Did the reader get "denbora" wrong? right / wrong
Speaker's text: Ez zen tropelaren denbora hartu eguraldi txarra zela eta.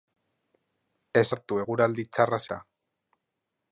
wrong